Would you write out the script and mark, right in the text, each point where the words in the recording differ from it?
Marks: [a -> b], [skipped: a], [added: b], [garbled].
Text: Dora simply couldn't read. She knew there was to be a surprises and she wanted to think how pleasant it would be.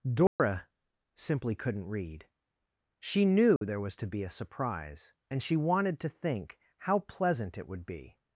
Dora simply couldn't read. She knew there was to be a [surprises -> surprise] and she wanted to think how pleasant it would be.